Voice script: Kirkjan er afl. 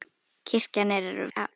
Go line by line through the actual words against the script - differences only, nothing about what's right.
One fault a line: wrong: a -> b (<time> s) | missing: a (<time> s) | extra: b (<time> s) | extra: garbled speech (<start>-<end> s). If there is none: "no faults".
no faults